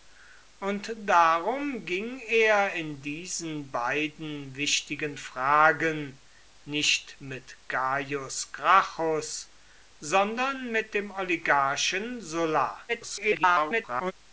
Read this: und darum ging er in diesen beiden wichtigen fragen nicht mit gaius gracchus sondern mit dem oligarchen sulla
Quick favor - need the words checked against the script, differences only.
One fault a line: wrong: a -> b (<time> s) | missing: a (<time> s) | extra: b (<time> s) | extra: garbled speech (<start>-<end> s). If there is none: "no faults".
extra: garbled speech (12.9-14.1 s)